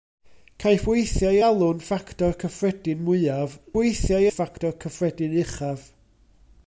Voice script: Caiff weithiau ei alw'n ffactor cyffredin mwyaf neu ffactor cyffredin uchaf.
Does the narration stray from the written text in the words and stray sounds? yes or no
yes